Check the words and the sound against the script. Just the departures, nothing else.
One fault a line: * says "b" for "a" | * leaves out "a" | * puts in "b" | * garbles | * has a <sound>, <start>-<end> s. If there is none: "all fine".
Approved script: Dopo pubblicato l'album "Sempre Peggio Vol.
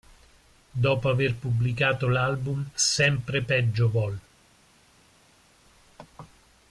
* puts in "aver"